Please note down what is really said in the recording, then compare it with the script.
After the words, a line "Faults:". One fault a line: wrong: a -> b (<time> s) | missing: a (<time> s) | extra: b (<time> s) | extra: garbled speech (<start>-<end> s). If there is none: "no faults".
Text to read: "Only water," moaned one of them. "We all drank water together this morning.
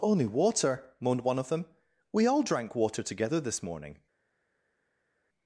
"Only water," moaned one of them. "We all drank water together this morning.
Faults:
no faults